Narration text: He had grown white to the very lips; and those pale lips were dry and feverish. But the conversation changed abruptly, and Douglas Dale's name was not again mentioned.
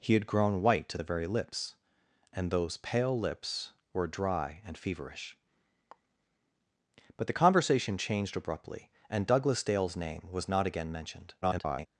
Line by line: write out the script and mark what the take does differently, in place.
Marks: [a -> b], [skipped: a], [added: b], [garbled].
He had grown white to the very lips; and those pale lips were dry and feverish. But the conversation changed abruptly, and Douglas Dale's name was not again mentioned. [garbled]